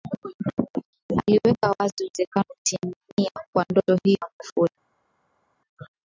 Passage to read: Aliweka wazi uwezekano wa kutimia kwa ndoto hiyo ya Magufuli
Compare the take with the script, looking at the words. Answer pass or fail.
fail